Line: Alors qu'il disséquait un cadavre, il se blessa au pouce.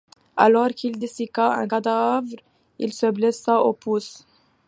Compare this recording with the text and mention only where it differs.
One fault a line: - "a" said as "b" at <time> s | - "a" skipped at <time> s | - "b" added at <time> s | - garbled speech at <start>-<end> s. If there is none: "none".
none